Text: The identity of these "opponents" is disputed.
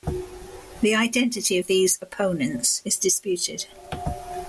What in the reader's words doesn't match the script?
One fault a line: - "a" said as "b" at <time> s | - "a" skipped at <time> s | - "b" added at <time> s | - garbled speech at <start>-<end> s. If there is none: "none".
none